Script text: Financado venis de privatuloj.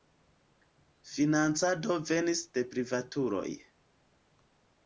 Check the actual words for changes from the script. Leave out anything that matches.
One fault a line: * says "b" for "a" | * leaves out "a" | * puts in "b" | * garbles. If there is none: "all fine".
all fine